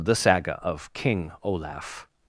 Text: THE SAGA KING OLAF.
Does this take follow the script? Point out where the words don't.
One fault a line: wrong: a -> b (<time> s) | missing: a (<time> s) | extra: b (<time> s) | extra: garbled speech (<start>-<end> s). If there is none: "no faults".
extra: OF (0.6 s)